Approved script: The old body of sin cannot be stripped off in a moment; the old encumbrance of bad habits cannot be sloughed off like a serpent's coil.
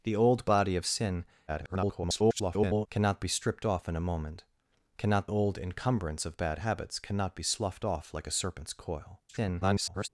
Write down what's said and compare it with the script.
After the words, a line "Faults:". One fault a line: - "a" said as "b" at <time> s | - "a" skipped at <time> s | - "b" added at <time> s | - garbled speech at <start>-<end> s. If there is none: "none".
The old body of sin [garbled] cannot be stripped off in a moment; cannot old encumbrance of bad habits cannot be sloughed off like a serpent's coil. [garbled]
Faults:
- garbled speech at 1.5-2.9 s
- "the" said as "cannot" at 5.0 s
- garbled speech at 9.3-10.1 s